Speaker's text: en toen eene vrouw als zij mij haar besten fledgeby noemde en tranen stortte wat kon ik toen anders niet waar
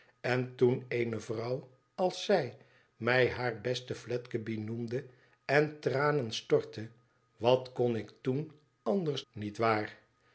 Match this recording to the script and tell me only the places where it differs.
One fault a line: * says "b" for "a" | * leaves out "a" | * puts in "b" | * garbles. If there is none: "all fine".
all fine